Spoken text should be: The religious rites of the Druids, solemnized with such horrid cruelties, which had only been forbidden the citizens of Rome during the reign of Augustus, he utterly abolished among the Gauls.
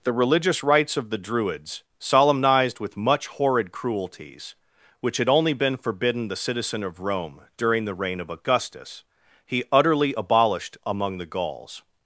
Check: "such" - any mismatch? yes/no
yes